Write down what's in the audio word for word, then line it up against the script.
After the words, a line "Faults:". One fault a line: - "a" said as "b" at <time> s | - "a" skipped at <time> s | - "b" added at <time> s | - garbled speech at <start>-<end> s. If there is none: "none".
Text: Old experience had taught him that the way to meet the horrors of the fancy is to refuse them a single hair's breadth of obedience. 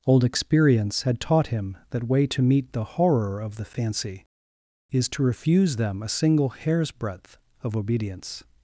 Old experience had taught him that way to meet the horror of the fancy is to refuse them a single hair's breadth of obedience.
Faults:
- "the" skipped at 2.1 s
- "horrors" said as "horror" at 2.8 s